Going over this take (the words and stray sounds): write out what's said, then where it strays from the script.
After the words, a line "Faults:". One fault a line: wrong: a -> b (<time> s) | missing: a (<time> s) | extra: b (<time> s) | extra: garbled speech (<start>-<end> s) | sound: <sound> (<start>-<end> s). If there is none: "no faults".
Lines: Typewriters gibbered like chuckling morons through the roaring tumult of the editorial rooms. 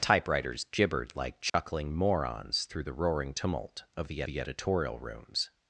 Typewriters gibbered like chuckling morons through the roaring tumult of the the editorial rooms.
Faults:
sound: dropout (1.5-1.5 s)
extra: the (4.2 s)